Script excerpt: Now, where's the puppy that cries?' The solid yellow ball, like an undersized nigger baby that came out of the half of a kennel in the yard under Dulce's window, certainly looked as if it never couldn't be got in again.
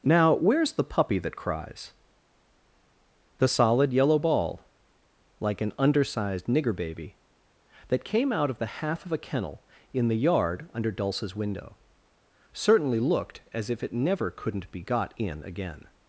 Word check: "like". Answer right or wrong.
right